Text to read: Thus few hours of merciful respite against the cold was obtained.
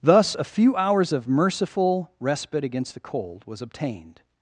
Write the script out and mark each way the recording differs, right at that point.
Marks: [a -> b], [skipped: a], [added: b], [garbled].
Thus [added: a] few hours of merciful respite against the cold was obtained.